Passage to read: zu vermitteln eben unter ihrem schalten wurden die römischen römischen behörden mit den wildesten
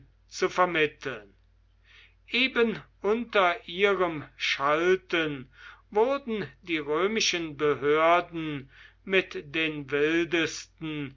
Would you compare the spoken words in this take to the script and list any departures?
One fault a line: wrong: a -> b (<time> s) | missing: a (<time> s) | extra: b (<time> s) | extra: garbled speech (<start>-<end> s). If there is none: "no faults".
missing: römischen (7.6 s)